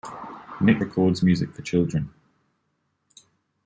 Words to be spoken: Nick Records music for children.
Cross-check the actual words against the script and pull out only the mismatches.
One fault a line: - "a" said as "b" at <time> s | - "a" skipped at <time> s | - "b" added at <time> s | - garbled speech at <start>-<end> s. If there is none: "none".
none